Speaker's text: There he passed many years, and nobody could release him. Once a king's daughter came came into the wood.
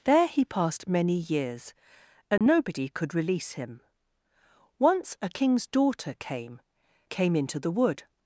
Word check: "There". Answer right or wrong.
right